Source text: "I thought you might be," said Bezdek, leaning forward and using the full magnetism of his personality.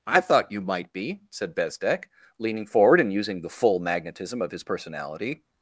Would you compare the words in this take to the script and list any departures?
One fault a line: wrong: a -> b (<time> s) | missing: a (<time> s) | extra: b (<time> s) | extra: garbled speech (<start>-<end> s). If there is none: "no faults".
no faults